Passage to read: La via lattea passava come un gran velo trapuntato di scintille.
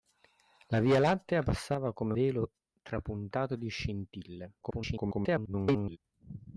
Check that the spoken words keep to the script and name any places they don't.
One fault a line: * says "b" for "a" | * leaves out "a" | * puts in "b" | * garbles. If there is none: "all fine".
* leaves out "un gran"
* garbles